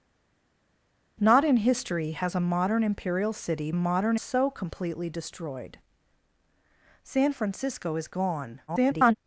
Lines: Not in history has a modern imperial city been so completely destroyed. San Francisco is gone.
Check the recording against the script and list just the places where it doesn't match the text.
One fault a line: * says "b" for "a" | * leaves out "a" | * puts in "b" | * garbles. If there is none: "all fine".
* says "modern" for "been"
* garbles